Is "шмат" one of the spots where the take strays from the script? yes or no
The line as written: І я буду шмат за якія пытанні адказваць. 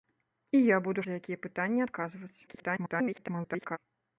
yes